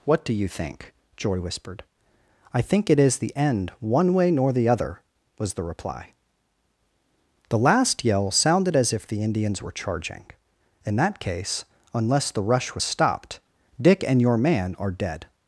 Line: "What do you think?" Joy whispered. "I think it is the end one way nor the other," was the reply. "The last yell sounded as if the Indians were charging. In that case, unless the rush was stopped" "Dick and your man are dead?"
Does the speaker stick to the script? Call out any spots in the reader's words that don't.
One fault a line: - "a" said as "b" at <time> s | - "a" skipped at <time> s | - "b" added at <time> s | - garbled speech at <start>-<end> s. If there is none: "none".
none